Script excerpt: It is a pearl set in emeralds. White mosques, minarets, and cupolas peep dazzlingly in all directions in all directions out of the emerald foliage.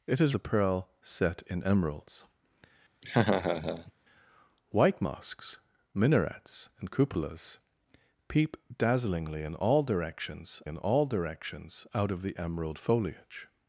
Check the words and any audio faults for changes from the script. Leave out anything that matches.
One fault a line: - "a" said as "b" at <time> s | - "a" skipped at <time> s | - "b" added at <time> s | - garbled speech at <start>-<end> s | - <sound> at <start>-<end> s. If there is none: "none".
- laugh at 3.0-3.9 s